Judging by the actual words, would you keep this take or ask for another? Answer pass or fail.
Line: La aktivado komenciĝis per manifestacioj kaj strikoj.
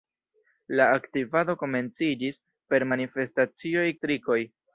fail